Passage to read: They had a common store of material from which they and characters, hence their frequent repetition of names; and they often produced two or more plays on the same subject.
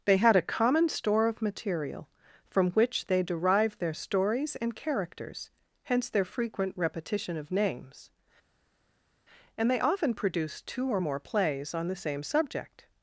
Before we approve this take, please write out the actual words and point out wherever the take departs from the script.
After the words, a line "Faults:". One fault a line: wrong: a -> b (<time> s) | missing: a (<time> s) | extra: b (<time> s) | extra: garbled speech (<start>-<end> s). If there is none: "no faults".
They had a common store of material from which they derived their stories and characters, hence their frequent repetition of names; and they often produced two or more plays on the same subject.
Faults:
extra: derived their stories (3.2 s)